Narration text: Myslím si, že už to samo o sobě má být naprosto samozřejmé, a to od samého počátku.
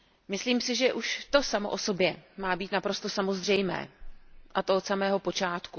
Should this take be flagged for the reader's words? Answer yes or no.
no